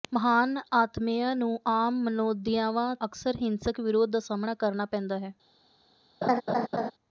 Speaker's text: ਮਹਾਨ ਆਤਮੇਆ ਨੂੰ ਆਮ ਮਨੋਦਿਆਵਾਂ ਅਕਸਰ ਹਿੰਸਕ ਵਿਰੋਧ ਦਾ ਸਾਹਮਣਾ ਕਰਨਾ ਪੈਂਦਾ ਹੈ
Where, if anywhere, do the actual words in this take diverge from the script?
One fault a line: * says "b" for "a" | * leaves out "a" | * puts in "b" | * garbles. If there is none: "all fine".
all fine